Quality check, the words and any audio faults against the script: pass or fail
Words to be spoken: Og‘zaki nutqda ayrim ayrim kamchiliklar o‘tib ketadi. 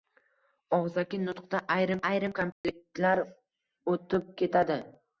fail